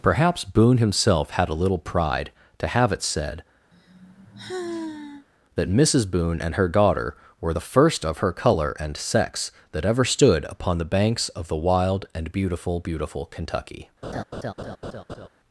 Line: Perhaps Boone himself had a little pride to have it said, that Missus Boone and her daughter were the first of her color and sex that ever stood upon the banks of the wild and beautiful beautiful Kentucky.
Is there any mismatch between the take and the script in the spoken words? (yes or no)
no